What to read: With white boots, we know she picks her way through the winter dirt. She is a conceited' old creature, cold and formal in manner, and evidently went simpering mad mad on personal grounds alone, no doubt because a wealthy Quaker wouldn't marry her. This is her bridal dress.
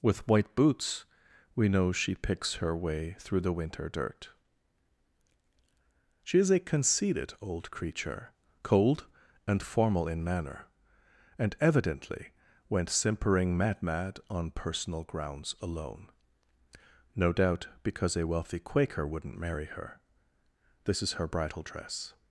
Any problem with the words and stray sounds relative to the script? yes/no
no